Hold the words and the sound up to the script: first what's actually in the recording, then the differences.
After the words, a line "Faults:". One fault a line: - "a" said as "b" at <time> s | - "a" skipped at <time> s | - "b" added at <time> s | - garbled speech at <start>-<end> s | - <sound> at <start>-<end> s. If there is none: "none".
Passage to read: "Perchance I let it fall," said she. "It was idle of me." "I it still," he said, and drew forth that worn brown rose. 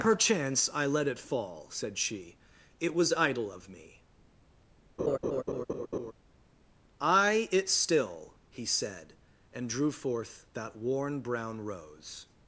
"Perchance I let it fall," said she. "It was idle of me." "I it still," he said, and drew forth that worn brown rose.
Faults:
- laugh at 5.0-6.1 s